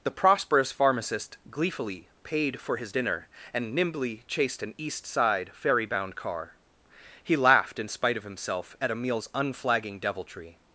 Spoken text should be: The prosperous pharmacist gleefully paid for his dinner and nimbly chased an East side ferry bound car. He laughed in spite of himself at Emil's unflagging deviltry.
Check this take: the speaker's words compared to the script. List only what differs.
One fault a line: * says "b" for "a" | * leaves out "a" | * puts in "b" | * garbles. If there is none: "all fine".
all fine